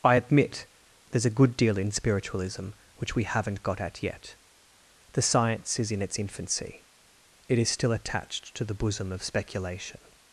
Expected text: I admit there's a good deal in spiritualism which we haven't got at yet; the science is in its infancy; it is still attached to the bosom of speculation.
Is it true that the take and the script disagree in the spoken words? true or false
false